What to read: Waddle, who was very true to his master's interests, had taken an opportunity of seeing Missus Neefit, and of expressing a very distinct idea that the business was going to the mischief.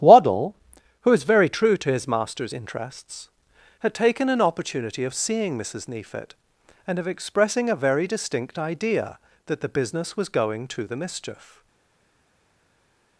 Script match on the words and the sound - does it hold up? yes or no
yes